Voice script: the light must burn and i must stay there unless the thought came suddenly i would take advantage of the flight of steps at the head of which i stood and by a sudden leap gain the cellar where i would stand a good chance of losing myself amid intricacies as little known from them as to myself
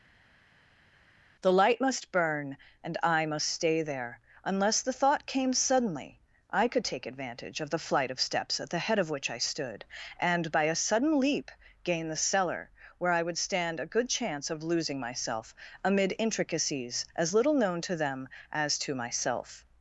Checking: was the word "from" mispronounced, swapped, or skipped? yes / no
yes